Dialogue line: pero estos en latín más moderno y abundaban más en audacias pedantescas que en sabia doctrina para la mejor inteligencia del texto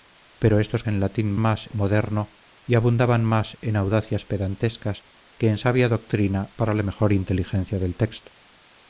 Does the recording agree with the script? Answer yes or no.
yes